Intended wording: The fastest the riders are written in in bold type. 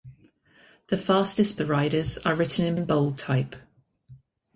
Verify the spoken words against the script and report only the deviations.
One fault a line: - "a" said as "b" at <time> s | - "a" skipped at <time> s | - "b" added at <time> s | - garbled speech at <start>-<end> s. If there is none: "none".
none